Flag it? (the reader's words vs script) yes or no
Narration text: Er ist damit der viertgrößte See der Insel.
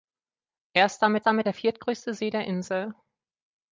yes